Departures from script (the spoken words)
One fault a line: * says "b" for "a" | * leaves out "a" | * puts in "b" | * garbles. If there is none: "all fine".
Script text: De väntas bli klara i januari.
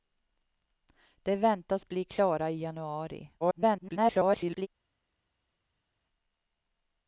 * garbles